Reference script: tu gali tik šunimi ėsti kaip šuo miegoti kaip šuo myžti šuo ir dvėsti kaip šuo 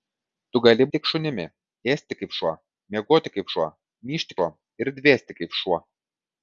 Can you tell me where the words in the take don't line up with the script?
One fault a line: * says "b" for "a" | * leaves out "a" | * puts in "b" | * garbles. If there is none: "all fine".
all fine